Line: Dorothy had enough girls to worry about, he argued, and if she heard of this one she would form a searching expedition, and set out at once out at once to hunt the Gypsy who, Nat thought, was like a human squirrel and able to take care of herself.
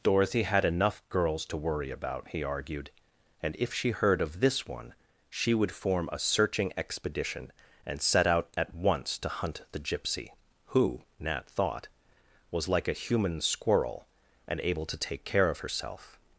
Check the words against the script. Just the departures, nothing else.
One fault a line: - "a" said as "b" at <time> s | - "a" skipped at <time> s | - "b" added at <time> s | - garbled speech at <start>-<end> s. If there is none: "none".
- "out at once" skipped at 9.2 s